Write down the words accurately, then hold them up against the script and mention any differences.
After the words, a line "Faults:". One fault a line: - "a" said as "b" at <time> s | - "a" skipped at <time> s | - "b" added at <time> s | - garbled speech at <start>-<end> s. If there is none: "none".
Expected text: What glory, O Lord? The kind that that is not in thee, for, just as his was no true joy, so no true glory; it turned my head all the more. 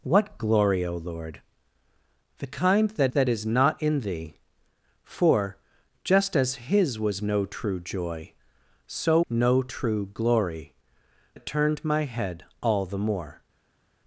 What glory, O Lord? The kind that that is not in thee, for, just as his was no true joy, so no true glory; it turned my head all the more.
Faults:
none